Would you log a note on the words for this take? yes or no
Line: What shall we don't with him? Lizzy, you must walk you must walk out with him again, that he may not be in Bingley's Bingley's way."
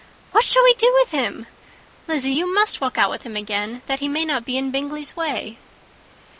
yes